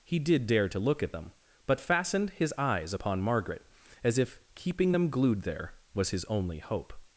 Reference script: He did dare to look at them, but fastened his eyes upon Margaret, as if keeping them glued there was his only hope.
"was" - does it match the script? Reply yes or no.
yes